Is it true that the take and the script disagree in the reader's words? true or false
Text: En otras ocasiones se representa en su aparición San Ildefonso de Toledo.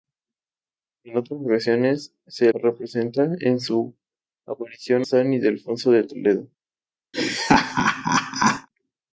false